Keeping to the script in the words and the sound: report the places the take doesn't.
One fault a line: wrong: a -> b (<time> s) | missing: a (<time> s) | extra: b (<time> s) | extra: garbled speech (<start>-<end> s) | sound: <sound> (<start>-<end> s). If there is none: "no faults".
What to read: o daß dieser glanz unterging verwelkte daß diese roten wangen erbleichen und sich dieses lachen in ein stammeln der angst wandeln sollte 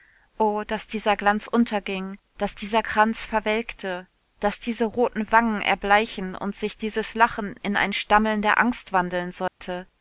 extra: daß dieser kranz (2.4 s)
sound: dropout (9.5-9.6 s)